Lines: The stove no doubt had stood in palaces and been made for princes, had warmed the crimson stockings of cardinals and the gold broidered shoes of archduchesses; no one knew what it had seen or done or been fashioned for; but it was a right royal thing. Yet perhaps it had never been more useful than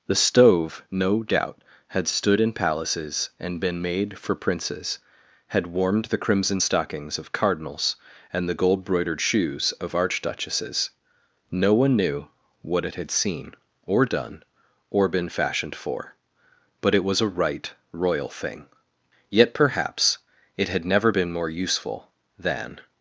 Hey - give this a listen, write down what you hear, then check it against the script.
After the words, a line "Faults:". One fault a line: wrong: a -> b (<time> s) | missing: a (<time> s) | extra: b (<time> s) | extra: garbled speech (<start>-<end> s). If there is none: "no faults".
The stove no doubt had stood in palaces and been made for princes, had warmed the crimson stockings of cardinals and the gold broidered shoes of archduchesses; no one knew what it had seen or done or been fashioned for; but it was a right royal thing. Yet perhaps it had never been more useful than
Faults:
no faults